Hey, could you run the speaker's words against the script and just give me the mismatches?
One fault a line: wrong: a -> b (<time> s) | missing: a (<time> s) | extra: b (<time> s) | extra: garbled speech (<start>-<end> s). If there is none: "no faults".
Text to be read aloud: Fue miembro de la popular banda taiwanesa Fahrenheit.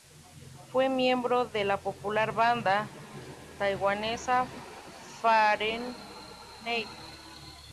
no faults